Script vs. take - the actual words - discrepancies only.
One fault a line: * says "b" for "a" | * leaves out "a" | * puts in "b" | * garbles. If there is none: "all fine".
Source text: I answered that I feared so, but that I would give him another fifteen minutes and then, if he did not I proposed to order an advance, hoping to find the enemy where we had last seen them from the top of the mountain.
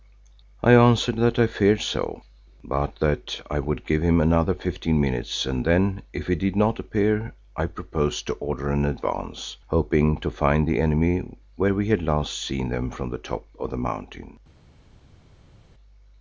* puts in "appear"